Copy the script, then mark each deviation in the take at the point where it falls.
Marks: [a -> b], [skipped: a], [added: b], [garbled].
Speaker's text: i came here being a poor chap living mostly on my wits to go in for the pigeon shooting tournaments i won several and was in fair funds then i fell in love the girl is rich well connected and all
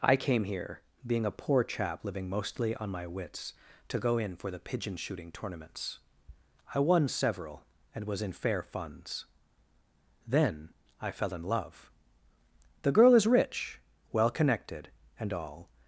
i came here being a poor chap living mostly on my wits to go in for the pigeon shooting tournaments i won several and was in fair funds then i fell in love the girl is rich well connected and all